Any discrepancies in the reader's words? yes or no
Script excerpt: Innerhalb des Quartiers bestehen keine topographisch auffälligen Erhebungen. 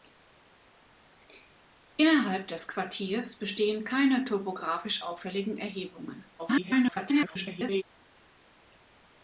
yes